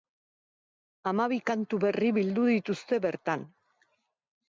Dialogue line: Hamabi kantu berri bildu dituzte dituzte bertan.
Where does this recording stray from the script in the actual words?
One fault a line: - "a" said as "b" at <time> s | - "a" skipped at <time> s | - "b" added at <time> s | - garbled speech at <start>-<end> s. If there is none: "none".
- "dituzte" skipped at 3.0 s